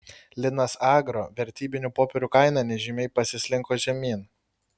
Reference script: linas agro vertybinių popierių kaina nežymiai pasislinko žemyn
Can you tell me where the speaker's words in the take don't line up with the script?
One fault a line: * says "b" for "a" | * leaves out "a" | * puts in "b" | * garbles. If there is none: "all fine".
all fine